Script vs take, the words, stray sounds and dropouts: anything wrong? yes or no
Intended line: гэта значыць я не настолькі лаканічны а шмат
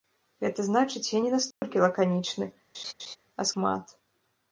yes